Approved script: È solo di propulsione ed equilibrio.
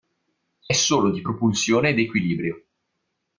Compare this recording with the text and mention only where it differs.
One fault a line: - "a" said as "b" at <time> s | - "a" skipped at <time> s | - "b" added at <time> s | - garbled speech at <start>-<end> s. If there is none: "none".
none